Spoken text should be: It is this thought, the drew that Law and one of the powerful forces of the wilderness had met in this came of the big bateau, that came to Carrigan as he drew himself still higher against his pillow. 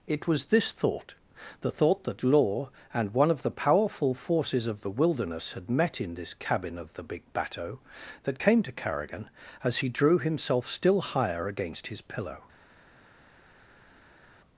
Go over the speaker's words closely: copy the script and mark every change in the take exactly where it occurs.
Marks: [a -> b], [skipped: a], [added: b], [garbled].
It [is -> was] this thought, the [drew -> thought] that Law and one of the powerful forces of the wilderness had met in this [came -> cabin] of the big bateau, that came to Carrigan as he drew himself still higher against his pillow.